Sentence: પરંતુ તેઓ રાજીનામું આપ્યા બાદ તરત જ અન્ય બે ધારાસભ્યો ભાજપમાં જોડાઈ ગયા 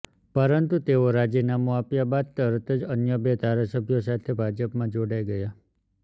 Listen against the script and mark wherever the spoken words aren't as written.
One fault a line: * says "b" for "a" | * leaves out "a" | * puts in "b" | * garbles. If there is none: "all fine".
* puts in "સાથે"